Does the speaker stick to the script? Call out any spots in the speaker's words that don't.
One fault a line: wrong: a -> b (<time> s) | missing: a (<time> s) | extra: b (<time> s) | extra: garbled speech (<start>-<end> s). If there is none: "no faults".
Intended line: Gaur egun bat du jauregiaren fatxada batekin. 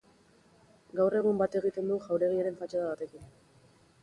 extra: egiten (1.6 s)